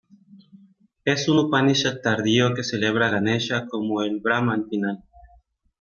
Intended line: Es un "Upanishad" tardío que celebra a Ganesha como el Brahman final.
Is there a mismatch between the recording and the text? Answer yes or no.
no